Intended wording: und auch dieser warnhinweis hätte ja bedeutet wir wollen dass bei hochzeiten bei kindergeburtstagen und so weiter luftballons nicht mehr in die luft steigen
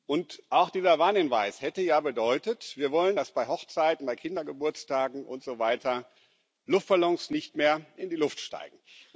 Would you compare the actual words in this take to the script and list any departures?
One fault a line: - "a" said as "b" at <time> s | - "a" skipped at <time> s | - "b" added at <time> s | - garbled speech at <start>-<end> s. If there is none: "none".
none